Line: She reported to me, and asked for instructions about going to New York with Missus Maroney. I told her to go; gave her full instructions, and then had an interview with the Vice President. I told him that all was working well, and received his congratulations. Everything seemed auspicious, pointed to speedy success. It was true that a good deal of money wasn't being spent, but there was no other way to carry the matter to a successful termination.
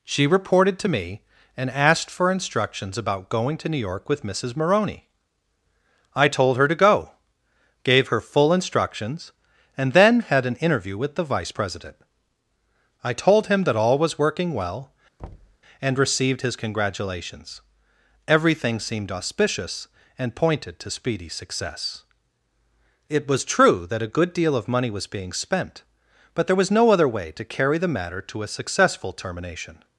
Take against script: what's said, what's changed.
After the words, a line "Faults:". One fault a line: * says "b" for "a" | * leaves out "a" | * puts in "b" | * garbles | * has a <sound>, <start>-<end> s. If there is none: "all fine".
She reported to me, and asked for instructions about going to New York with Missus Maroney. I told her to go; gave her full instructions, and then had an interview with the Vice President. I told him that all was working well, and received his congratulations. Everything seemed auspicious, and pointed to speedy success. It was true that a good deal of money was being spent, but there was no other way to carry the matter to a successful termination.
Faults:
* has a thud, 15.2-15.6 s
* puts in "and"
* says "was" for "wasn't"